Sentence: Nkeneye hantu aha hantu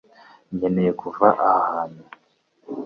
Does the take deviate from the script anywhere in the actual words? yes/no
yes